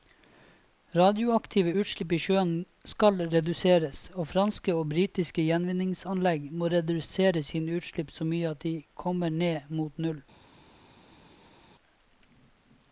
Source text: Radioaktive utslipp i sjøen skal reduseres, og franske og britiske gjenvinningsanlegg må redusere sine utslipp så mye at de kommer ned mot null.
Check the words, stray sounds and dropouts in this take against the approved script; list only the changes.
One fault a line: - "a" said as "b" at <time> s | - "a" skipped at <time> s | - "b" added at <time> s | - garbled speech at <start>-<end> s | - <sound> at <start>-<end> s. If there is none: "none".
none